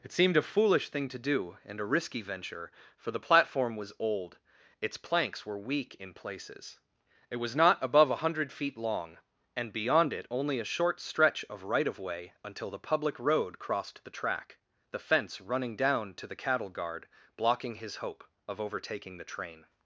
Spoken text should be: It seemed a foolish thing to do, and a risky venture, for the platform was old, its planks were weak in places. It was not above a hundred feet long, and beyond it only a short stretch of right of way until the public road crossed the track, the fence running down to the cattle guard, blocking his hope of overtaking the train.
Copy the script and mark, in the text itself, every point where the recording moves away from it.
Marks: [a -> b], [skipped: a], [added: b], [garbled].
It seemed a foolish thing to do, and a risky venture, for the platform was old, its planks were weak in places. It was not above a hundred feet long, and beyond it only a short stretch of right of way until the public road crossed the track, the fence running down to the cattle guard, blocking his hope of overtaking the train.